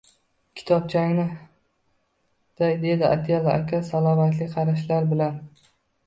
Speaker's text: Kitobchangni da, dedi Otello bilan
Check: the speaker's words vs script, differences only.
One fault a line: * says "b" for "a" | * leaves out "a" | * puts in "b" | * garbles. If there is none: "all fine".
* puts in "aka salobatli qarashlar"